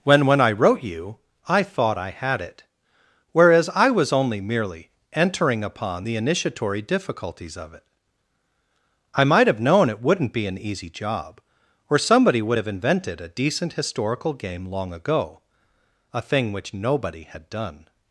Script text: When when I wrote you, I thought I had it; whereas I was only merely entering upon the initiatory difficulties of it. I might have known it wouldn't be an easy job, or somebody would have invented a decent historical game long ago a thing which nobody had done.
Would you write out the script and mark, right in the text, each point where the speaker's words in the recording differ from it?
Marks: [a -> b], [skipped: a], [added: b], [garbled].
When when I wrote you, I thought I had it; whereas I was only merely entering upon the initiatory difficulties of it. I might have known it wouldn't be an easy job, or somebody would have invented a decent historical game long ago a thing which nobody had done.